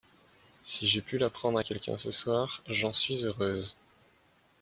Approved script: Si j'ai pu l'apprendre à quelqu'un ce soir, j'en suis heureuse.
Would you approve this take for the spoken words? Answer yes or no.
yes